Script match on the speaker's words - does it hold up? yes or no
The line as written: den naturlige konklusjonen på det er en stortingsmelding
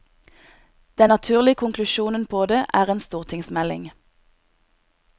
yes